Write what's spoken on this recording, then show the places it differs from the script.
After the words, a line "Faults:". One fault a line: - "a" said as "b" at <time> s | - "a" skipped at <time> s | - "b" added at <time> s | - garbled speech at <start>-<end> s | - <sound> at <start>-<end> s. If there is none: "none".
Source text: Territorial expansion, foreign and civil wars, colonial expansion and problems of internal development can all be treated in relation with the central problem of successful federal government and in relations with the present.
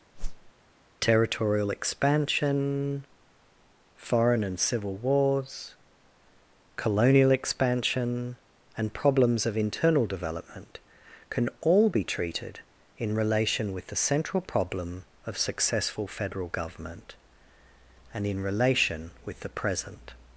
Territorial expansion, foreign and civil wars, colonial expansion and problems of internal development can all be treated in relation with the central problem of successful federal government and in relation with the present.
Faults:
- whoosh at 0.2-0.5 s
- "relations" said as "relation" at 18.4 s